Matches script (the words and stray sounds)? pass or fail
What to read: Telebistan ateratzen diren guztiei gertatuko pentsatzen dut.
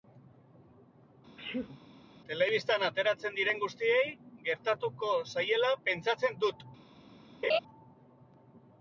fail